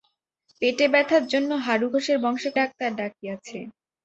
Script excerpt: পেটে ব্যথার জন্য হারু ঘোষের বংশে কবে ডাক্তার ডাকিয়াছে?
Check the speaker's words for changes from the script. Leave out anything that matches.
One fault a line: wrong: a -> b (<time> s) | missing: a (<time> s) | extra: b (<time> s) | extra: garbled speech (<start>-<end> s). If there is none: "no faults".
missing: কবে (2.5 s)